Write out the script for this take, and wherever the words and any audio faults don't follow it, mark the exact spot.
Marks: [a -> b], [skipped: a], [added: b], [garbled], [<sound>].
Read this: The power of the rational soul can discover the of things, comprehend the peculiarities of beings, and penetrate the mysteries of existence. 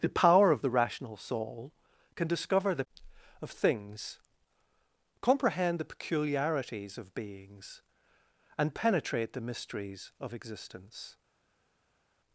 The power of the rational soul can discover the of things, comprehend the peculiarities of beings, and penetrate the mysteries of existence.